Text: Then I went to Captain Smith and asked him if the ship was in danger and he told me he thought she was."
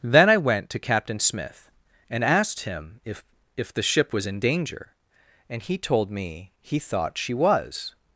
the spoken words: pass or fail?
fail